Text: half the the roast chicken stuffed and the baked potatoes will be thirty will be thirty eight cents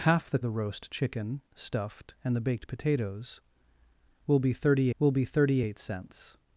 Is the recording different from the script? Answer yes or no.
no